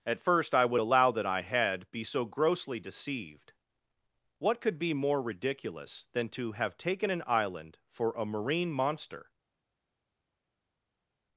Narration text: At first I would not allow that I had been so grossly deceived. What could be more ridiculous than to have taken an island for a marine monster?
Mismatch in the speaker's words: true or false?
true